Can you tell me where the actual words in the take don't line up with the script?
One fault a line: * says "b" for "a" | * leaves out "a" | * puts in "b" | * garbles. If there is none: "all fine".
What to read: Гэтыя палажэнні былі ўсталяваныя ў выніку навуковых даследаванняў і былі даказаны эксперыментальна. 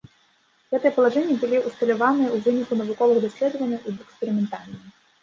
* leaves out "былі даказаны"